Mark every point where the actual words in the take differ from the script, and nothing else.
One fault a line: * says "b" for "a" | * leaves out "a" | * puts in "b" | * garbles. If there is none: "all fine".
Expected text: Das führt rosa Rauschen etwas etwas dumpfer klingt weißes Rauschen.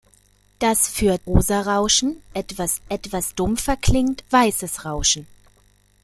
all fine